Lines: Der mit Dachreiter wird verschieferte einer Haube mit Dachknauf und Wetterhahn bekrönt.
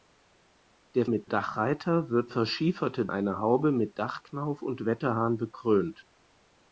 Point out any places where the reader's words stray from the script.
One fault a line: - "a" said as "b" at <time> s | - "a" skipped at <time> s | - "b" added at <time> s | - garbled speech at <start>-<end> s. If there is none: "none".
none